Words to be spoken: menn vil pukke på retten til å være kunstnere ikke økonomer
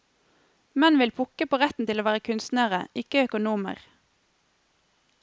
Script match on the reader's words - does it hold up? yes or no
yes